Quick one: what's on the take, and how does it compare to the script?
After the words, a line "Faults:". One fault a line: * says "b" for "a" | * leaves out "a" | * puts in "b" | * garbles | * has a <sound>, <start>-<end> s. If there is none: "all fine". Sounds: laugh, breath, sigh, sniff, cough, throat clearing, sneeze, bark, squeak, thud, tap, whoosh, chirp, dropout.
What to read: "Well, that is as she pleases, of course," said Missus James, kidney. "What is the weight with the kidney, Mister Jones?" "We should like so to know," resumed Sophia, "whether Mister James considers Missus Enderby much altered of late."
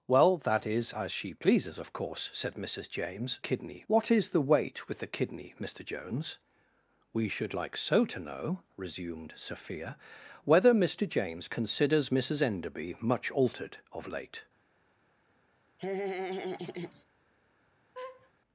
"Well, that is as she pleases, of course," said Missus James, kidney. "What is the weight with the kidney, Mister Jones?" "We should like so to know," resumed Sophia, "whether Mister James considers Missus Enderby much altered of late."
Faults:
* has a laugh, 15.8-17.0 s
* has a laugh, 17.9-18.3 s